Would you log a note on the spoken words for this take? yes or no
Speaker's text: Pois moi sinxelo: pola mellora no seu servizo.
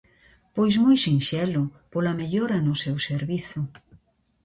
no